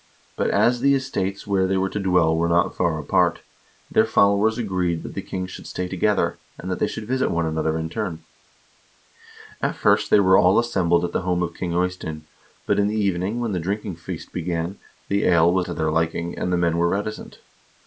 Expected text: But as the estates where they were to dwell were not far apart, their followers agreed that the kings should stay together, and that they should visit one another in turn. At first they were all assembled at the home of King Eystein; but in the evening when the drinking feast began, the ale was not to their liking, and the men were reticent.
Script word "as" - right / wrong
right